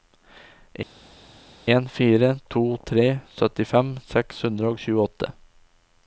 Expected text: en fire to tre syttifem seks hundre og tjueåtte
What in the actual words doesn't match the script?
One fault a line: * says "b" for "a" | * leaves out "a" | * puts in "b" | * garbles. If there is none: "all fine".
all fine